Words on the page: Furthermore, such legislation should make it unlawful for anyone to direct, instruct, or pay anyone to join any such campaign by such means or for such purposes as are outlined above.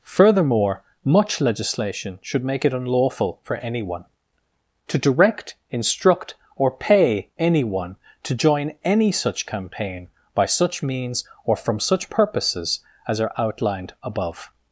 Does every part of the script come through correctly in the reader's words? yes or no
no